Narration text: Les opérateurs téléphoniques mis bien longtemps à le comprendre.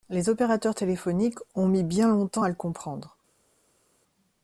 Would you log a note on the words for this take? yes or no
yes